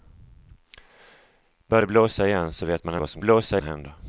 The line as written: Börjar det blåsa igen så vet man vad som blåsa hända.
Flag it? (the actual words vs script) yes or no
no